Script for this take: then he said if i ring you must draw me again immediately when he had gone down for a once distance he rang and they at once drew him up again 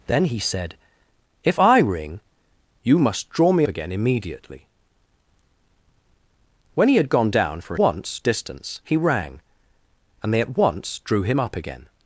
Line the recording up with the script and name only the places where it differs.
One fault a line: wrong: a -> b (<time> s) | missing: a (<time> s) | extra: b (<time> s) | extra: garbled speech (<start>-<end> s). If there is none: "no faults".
no faults